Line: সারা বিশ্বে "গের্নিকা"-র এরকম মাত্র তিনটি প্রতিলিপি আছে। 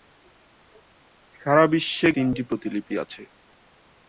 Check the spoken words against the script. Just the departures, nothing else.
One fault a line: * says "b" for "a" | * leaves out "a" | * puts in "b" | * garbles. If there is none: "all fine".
* leaves out "গের্নিকা"-র এরকম মাত্র"